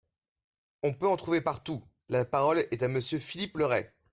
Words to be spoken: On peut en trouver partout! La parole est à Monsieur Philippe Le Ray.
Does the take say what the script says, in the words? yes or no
yes